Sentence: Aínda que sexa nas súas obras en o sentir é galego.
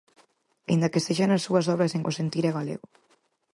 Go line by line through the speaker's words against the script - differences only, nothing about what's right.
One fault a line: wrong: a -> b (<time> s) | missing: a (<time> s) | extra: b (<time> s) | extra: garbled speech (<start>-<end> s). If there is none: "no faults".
no faults